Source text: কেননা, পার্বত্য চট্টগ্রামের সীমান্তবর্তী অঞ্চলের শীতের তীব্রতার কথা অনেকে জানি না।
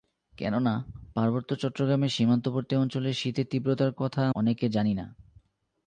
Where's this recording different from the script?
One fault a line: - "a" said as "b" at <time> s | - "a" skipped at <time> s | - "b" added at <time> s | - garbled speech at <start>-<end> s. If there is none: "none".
none